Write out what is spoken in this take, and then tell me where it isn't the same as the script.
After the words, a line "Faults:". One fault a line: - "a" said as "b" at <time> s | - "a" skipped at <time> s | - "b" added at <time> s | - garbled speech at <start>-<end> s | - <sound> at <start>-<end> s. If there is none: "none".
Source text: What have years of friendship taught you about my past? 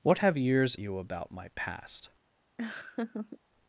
What have years you about my past?
Faults:
- "of friendship taught" skipped at 0.7 s
- laugh at 2.6-3.4 s